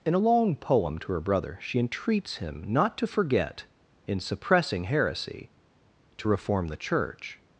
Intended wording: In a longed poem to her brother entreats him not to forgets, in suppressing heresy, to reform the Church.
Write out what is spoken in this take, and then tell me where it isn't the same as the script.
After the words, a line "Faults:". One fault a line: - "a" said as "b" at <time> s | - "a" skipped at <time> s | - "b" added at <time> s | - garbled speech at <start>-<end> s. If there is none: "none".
In a long poem to her brother she entreats him not to forget, in suppressing heresy, to reform the Church.
Faults:
- "longed" said as "long" at 0.2 s
- "she" added at 1.6 s
- "forgets" said as "forget" at 3.1 s